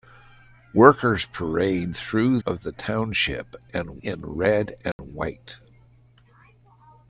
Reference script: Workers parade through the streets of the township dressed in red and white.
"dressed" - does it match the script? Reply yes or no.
no